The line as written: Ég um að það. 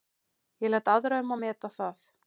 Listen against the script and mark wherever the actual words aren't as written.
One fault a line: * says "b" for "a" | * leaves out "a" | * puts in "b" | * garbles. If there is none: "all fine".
* puts in "læt aðra"
* puts in "meta"